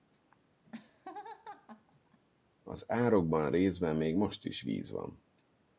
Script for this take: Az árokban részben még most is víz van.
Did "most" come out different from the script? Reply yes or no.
no